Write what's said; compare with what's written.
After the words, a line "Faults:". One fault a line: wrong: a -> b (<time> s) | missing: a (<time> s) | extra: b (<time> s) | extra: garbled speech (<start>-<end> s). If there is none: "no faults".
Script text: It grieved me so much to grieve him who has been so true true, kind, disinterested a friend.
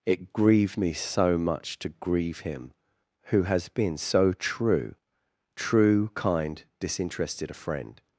It grieved me so much to grieve him who has been so true true, kind, disinterested a friend.
Faults:
no faults